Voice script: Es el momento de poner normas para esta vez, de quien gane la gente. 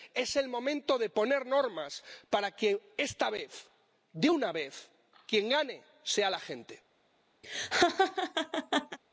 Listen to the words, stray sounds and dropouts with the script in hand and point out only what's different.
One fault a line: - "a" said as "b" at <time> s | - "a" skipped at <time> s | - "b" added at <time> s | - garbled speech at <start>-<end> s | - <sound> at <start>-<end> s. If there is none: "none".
- "que" added at 2.5 s
- "una vez" added at 4.3 s
- "sea" added at 6.0 s
- laugh at 7.4-9.0 s